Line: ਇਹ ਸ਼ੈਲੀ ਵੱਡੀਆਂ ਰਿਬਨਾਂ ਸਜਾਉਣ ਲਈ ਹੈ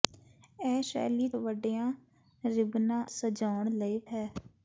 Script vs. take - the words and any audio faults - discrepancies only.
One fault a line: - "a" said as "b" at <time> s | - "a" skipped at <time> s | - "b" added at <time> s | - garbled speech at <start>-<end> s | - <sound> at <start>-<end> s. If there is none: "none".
none